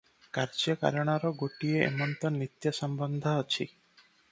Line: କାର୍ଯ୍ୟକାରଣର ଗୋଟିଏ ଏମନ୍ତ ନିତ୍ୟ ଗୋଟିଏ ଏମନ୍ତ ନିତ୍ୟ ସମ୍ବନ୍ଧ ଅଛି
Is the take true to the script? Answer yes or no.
no